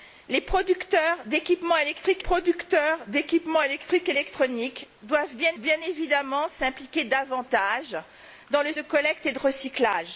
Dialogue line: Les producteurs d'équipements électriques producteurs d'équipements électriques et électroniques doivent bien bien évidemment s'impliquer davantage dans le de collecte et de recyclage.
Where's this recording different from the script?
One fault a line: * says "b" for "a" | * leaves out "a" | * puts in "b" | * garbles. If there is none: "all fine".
all fine